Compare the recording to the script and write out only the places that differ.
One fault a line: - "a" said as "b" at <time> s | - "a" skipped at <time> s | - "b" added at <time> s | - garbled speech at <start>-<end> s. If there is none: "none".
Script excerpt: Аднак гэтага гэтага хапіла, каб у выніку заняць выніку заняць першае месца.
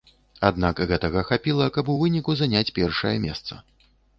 - "гэтага" skipped at 1.2 s
- "выніку заняць" skipped at 2.7 s